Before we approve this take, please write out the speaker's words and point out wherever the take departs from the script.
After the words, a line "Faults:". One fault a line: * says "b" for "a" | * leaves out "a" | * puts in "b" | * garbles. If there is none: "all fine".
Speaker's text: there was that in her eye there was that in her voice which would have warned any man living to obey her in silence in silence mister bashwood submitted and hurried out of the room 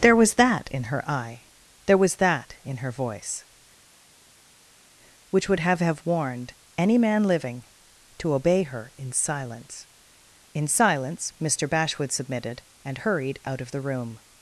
there was that in her eye there was that in her voice which would have have warned any man living to obey her in silence in silence mister bashwood submitted and hurried out of the room
Faults:
* puts in "have"